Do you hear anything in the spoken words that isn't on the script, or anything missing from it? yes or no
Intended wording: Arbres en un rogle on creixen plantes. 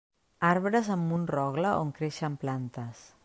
yes